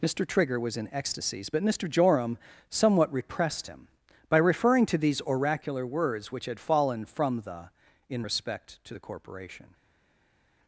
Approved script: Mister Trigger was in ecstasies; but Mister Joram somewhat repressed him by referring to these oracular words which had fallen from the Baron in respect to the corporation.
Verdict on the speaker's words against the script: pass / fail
fail